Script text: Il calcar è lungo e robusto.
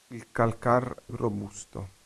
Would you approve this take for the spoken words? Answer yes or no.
no